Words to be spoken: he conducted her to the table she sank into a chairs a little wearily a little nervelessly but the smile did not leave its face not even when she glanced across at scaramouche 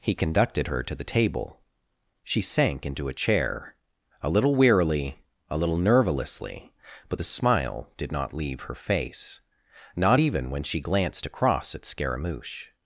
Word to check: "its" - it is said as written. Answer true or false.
false